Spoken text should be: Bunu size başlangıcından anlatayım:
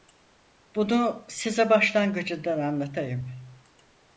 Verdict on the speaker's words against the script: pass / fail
pass